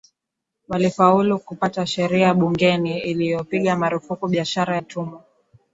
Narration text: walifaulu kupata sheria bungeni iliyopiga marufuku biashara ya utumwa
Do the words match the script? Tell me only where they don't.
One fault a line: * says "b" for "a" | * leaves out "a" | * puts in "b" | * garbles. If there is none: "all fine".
* leaves out "ya"